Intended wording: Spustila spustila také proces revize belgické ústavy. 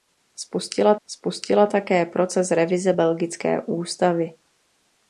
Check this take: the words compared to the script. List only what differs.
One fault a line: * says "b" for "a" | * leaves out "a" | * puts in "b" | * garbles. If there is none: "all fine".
all fine